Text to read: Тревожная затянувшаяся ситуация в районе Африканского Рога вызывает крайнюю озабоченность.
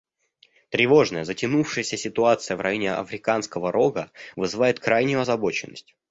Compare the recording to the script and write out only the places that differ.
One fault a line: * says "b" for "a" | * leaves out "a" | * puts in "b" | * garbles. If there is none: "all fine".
all fine